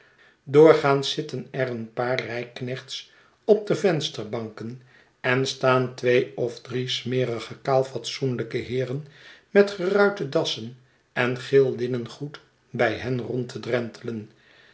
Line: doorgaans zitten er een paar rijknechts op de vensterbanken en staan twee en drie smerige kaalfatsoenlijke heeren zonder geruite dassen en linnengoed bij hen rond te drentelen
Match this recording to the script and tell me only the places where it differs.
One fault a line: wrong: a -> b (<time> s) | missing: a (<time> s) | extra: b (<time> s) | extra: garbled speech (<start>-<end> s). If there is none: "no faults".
wrong: en -> of (6.4 s)
wrong: zonder -> met (9.5 s)
extra: geel (11.4 s)